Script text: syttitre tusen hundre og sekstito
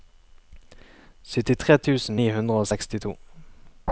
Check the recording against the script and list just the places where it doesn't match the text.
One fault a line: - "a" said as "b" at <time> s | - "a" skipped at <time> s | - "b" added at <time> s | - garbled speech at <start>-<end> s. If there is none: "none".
- "ni" added at 2.2 s